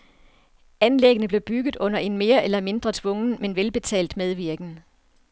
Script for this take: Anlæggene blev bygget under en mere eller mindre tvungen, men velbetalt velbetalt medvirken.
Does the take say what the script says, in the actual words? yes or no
no